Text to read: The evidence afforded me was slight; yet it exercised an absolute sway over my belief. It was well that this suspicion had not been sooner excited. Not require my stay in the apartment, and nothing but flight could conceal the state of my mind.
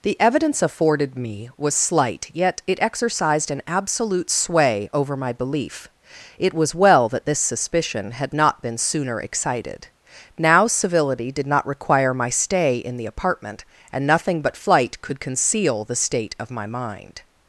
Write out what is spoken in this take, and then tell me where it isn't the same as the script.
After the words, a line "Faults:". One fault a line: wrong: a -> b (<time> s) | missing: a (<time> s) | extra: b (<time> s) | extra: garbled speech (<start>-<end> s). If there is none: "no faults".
The evidence afforded me was slight; yet it exercised an absolute sway over my belief. It was well that this suspicion had not been sooner excited. Now civility did not require my stay in the apartment, and nothing but flight could conceal the state of my mind.
Faults:
extra: Now civility did (10.4 s)